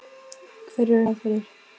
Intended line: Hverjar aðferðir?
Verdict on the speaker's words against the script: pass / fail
pass